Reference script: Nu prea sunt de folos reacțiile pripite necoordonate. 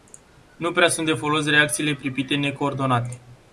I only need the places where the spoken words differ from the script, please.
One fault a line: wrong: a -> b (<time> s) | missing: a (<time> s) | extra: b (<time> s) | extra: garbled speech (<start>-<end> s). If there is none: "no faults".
no faults